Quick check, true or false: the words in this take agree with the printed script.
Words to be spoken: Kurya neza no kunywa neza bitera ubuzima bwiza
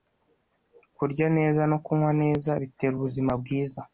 true